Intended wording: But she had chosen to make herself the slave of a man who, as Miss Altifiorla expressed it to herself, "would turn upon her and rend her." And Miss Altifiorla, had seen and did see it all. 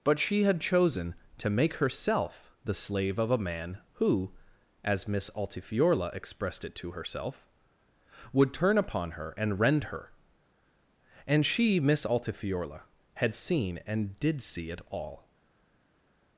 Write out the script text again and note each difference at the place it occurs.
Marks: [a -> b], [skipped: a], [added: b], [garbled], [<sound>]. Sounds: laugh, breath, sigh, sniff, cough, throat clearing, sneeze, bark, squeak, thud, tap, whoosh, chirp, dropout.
But she had chosen to make herself the slave of a man who, as Miss Altifiorla expressed it to herself, "would turn upon her and rend her." And [added: she] Miss Altifiorla, had seen and did see it all.